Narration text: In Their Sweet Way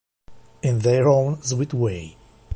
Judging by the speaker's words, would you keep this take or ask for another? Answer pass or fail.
fail